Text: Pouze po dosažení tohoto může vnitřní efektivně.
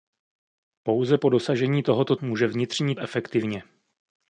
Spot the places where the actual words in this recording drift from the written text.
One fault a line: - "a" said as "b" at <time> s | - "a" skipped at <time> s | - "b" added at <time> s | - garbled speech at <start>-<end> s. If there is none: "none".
none